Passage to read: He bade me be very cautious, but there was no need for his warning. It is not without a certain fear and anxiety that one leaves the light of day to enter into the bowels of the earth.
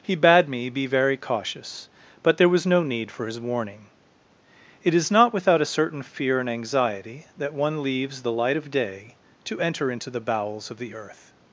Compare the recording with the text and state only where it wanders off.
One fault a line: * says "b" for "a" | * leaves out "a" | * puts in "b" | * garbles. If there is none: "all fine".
all fine